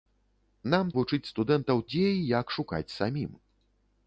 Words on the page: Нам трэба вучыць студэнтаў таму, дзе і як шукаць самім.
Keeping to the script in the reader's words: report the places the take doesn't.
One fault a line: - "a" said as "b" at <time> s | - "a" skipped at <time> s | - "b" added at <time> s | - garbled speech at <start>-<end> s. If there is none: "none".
- "трэба" skipped at 0.9 s
- "таму" skipped at 1.8 s